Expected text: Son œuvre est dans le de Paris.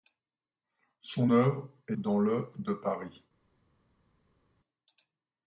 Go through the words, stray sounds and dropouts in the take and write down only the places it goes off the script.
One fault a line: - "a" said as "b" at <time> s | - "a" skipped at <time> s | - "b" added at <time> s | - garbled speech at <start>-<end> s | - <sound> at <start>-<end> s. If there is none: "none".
none